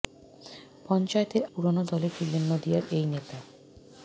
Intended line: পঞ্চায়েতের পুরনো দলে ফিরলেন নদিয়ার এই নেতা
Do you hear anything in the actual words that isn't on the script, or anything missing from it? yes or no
no